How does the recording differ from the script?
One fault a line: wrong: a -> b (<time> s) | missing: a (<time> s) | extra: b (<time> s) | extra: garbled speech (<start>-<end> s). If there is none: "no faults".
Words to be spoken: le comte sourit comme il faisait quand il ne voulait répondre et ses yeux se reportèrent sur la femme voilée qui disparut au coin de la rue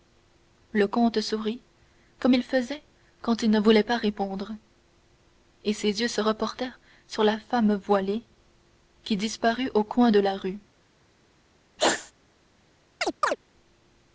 extra: pas (3.8 s)